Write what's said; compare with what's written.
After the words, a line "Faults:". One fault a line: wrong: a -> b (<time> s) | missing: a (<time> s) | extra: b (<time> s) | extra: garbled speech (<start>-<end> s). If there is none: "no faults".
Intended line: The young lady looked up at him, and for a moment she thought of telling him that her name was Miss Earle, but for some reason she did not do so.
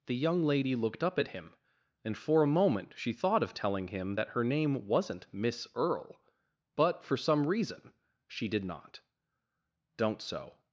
The young lady looked up at him, and for a moment she thought of telling him that her name wasn't Miss Earle, but for some reason she did not don't so.
Faults:
wrong: was -> wasn't (4.9 s)
wrong: do -> don't (10.0 s)